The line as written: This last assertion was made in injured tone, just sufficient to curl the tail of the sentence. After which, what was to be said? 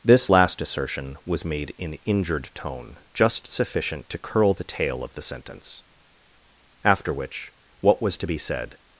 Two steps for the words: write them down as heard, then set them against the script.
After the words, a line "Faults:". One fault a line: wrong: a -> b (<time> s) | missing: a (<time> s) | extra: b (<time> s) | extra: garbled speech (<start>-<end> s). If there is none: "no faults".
This last assertion was made in injured tone, just sufficient to curl the tail of the sentence. After which, what was to be said?
Faults:
no faults